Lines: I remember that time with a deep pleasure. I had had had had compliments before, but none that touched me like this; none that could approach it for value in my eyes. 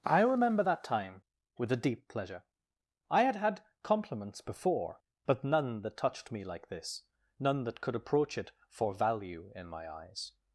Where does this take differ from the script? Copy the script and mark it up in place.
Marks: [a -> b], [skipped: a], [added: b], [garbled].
I remember that time with a deep pleasure. I had had [skipped: had had] compliments before, but none that touched me like this; none that could approach it for value in my eyes.